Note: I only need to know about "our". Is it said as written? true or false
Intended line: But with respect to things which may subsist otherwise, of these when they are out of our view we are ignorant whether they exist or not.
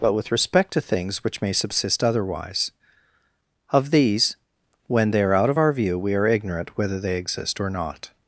true